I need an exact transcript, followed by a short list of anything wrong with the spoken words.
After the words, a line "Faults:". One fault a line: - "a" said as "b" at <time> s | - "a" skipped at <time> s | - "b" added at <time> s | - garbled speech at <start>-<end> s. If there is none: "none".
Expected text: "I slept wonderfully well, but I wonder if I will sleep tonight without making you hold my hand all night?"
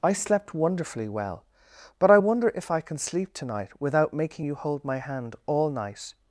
"I slept wonderfully well, but I wonder if I can sleep tonight without making you hold my hand all night?"
Faults:
- "will" said as "can" at 2.8 s